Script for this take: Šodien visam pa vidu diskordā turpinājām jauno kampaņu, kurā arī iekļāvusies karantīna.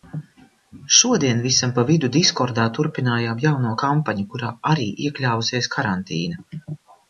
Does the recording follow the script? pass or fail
pass